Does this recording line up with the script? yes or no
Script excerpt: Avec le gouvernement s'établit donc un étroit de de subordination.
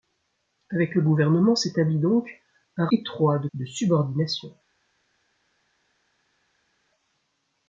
yes